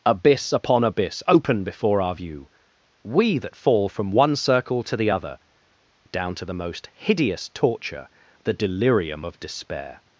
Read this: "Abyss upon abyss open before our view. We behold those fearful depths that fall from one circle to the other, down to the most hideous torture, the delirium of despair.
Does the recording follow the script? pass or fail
fail